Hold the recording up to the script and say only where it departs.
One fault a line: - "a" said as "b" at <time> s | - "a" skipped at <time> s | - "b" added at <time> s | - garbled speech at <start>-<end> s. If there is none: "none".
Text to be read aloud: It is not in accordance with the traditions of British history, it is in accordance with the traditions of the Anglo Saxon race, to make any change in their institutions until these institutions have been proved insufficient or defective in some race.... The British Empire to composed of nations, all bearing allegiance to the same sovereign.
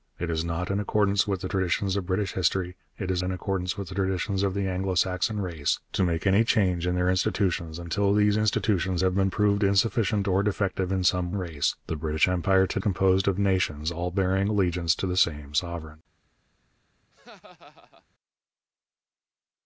none